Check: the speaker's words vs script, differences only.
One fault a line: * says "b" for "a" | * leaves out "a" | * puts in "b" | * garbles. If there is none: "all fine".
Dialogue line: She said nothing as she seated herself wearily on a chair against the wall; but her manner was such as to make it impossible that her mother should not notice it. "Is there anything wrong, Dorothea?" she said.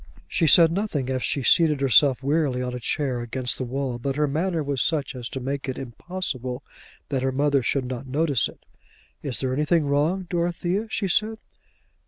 all fine